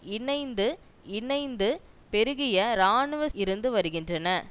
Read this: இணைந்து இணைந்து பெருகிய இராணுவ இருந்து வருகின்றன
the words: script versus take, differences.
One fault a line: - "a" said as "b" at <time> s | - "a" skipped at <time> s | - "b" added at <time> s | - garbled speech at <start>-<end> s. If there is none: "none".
none